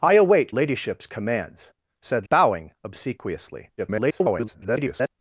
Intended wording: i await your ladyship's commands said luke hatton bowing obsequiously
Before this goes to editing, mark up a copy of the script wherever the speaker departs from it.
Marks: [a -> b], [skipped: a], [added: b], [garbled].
i await [skipped: your] ladyship's commands said [skipped: luke hatton] bowing obsequiously [garbled]